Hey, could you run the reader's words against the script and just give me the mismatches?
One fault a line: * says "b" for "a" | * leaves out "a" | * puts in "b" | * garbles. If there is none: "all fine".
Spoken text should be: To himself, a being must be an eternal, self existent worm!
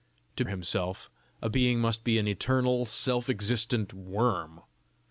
all fine